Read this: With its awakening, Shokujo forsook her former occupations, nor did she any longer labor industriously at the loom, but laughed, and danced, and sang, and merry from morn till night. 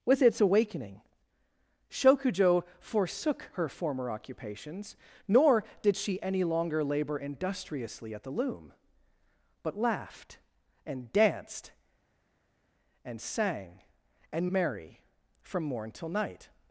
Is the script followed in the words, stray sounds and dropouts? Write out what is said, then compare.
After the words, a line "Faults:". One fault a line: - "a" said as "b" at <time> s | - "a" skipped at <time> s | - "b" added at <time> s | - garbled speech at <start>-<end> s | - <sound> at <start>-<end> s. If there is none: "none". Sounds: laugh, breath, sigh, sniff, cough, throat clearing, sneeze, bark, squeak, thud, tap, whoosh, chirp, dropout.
With its awakening, Shokujo forsook her former occupations, nor did she any longer labor industriously at the loom, but laughed, and danced, and sang, and merry from morn till night.
Faults:
none